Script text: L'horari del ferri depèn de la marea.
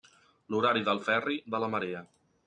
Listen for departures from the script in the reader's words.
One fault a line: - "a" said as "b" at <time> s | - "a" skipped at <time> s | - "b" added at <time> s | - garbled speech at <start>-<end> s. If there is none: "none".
- "depèn" skipped at 1.4 s